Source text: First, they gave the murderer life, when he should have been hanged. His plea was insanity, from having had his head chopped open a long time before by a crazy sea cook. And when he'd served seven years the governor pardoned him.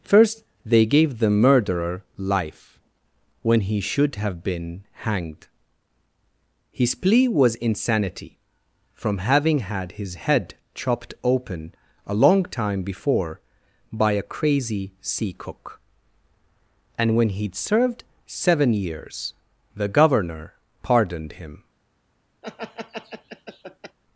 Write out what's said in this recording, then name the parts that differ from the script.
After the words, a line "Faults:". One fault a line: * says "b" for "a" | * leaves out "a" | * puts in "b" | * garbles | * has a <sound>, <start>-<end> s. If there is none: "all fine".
First, they gave the murderer life, when he should have been hanged. His plea was insanity, from having had his head chopped open a long time before by a crazy sea cook. And when he'd served seven years the governor pardoned him.
Faults:
* has a laugh, 22.4-24.0 s